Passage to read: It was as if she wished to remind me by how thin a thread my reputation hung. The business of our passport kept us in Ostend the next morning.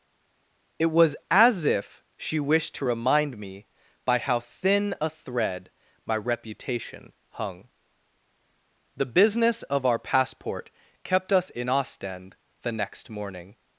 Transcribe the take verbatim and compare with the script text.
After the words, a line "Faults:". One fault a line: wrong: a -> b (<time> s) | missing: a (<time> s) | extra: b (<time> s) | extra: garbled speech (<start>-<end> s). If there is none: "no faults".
It was as if she wished to remind me by how thin a thread my reputation hung. The business of our passport kept us in Ostend the next morning.
Faults:
no faults